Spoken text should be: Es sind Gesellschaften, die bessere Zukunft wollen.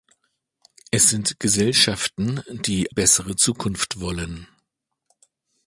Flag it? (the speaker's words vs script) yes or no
no